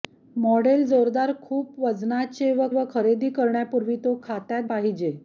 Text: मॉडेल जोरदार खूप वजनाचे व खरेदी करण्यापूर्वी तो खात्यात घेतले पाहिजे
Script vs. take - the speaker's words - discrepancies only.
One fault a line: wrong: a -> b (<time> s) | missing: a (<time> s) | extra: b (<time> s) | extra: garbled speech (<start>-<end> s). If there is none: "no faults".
extra: व (2.7 s)
missing: घेतले (4.6 s)